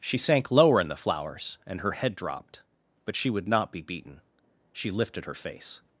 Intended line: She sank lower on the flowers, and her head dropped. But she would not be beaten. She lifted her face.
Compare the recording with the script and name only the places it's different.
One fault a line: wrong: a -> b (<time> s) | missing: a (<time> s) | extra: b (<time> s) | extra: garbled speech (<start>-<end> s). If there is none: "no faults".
wrong: on -> in (0.8 s)